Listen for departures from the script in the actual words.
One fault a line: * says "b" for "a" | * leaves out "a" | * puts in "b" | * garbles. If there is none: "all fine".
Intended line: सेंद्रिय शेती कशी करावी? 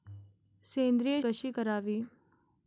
* leaves out "शेती"